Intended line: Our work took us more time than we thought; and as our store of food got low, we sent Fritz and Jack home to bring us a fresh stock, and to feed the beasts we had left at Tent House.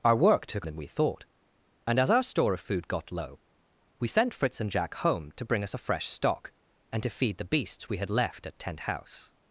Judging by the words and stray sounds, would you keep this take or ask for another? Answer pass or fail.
fail